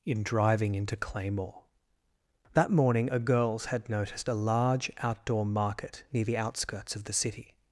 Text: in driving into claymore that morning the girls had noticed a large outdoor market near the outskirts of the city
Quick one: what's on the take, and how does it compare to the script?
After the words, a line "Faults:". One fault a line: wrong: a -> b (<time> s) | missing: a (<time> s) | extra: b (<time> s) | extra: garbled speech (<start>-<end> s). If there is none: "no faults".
in driving into claymore that morning a girls had noticed a large outdoor market near the outskirts of the city
Faults:
wrong: the -> a (3.1 s)